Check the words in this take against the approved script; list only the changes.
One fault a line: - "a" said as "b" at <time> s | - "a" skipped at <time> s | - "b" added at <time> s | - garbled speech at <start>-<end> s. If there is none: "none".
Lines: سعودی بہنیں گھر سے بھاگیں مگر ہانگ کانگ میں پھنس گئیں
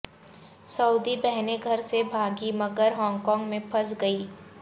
none